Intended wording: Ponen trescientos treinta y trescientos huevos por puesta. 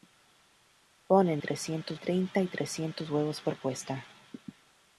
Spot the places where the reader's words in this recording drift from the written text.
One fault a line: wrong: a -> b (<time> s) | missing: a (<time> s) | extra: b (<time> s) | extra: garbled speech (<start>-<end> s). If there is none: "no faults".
no faults